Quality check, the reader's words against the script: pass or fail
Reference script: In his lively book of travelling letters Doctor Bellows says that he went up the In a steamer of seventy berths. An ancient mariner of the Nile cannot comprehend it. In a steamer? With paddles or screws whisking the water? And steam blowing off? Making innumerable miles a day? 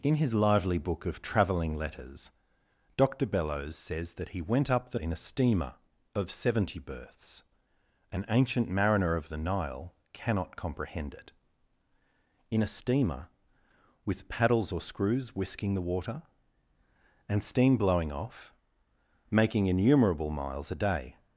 pass